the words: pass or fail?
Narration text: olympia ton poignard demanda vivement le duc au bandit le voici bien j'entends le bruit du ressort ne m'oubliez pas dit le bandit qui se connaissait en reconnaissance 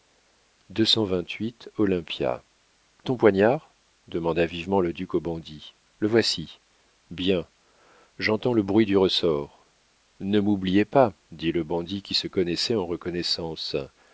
pass